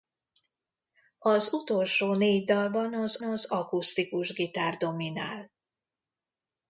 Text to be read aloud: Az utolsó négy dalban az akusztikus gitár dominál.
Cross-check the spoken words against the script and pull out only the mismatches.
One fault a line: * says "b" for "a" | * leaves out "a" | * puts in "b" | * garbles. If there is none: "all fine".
* puts in "az"